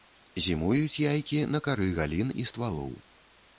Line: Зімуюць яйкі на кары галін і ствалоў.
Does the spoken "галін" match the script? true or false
true